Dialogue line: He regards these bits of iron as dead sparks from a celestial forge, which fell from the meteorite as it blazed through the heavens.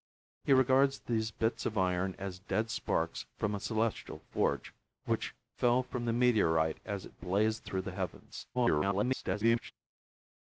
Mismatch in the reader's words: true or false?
true